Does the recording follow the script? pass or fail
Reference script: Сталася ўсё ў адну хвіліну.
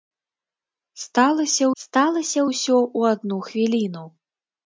fail